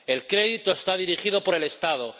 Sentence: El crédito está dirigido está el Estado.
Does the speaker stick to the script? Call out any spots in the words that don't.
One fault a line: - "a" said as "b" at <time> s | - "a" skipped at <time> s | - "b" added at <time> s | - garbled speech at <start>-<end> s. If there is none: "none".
- "está" said as "por" at 1.4 s